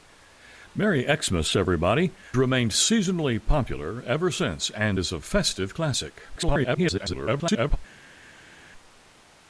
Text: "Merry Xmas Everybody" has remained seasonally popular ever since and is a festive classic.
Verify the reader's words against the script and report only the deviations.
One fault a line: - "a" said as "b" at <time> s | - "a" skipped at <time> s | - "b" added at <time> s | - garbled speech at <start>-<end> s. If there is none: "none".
- "has" skipped at 2.1 s
- garbled speech at 6.4-7.8 s